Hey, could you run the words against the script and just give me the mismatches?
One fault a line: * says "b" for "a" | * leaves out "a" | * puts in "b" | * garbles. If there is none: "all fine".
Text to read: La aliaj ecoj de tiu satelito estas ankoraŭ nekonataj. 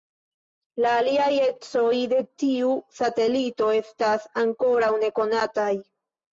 all fine